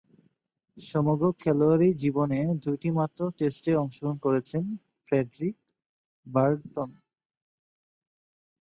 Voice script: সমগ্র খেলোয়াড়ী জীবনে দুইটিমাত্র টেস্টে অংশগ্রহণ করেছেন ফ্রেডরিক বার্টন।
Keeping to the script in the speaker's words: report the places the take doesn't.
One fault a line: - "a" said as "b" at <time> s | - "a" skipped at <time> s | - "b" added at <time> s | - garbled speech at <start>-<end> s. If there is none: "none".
none